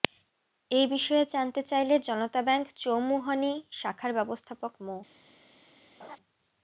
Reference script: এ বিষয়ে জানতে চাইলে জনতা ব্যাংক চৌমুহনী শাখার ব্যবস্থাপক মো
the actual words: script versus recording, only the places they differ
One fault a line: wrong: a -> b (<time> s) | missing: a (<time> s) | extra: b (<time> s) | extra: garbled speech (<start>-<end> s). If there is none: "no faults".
no faults